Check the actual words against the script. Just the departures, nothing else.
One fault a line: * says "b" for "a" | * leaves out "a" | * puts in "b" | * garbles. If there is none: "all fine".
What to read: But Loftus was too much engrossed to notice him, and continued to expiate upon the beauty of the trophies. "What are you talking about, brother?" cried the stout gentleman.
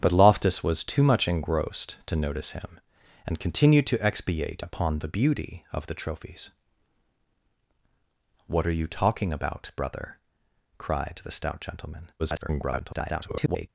* garbles